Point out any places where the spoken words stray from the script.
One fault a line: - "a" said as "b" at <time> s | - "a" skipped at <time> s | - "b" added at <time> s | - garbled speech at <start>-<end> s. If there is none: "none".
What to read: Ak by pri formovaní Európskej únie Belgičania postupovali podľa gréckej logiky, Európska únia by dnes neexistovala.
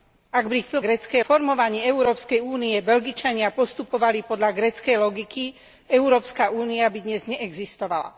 - "pri" said as "gréckej" at 0.8 s